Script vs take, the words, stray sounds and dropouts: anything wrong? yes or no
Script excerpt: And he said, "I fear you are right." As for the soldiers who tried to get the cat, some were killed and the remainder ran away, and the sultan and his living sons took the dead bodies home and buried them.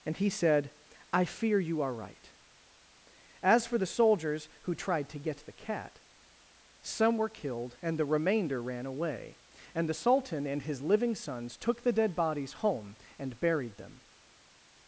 no